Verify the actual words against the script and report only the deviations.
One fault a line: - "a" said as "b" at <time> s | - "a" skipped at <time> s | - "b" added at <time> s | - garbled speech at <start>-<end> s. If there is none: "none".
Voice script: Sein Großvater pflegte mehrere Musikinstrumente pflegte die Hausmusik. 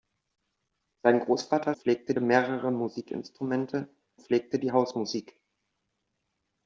none